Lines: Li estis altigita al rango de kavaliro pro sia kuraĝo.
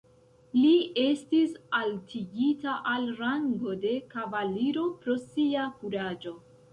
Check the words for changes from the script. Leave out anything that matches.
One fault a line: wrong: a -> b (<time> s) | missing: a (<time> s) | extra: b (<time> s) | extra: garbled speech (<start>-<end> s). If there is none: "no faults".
no faults